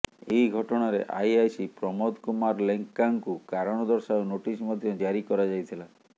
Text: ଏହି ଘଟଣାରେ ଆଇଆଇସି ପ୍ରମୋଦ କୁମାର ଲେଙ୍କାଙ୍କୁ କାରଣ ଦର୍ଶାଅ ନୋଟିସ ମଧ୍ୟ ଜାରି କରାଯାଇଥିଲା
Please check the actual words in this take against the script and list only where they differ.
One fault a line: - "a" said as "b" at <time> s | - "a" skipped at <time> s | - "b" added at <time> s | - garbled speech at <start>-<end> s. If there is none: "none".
none